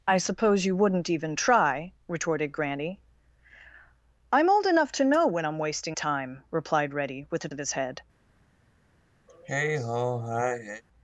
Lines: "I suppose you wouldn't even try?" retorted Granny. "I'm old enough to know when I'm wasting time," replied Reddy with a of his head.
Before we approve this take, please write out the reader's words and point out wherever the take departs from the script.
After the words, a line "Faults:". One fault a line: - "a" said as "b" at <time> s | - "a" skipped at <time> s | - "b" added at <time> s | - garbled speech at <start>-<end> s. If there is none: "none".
"I suppose you wouldn't even try?" retorted Granny. "I'm old enough to know when I'm wasting time," replied Reddy with a of his head.
Faults:
none